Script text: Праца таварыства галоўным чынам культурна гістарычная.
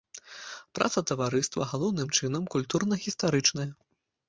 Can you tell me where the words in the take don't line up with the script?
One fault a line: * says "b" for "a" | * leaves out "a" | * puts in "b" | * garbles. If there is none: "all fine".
all fine